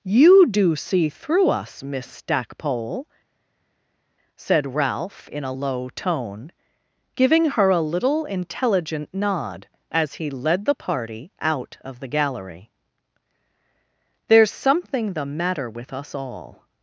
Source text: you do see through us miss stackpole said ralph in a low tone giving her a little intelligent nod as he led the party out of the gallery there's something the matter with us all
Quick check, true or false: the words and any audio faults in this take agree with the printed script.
true